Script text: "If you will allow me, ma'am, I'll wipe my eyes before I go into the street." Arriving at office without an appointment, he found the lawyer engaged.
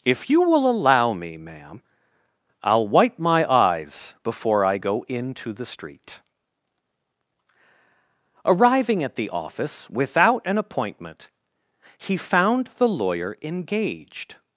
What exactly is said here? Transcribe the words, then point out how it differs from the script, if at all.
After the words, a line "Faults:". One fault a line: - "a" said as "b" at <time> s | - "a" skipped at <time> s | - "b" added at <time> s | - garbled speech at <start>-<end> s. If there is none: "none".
"If you will allow me, ma'am, I'll wipe my eyes before I go into the street." Arriving at the office without an appointment, he found the lawyer engaged.
Faults:
- "the" added at 9.2 s